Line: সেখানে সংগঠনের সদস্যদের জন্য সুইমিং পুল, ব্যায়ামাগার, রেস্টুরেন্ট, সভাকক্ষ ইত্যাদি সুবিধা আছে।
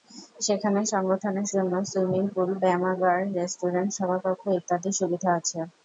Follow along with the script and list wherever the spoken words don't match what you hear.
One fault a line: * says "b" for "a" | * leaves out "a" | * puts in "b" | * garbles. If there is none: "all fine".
* leaves out "সদস্যদের"